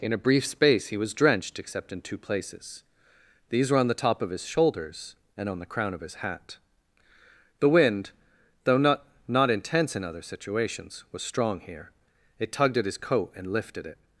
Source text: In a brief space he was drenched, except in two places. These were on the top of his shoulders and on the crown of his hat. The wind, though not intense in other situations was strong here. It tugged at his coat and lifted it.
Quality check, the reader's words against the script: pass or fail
fail